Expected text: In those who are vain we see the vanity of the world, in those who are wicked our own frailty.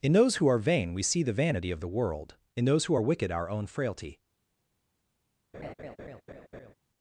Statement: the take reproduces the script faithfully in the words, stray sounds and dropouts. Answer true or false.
false